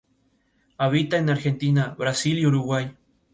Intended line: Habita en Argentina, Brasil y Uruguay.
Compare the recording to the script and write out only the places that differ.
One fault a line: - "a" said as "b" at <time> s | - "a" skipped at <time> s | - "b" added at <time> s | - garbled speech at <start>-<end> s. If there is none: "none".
none